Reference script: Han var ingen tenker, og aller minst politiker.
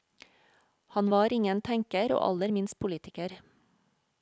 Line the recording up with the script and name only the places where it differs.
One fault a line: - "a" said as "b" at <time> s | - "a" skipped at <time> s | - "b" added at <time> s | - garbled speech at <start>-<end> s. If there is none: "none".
none